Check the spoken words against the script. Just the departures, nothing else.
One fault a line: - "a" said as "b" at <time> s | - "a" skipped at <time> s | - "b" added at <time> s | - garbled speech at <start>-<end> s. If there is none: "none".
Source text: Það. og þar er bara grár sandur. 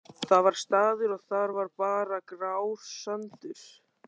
- "var staður" added at 0.5 s
- "er" said as "var" at 1.6 s